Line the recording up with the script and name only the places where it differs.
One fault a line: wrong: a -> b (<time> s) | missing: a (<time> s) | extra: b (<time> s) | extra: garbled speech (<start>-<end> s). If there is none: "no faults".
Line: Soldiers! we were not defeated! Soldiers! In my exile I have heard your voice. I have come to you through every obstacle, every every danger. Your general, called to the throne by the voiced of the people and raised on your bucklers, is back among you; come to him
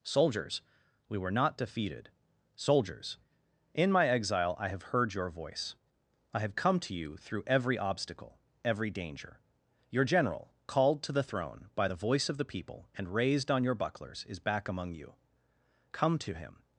missing: every (8.9 s)
wrong: voiced -> voice (12.0 s)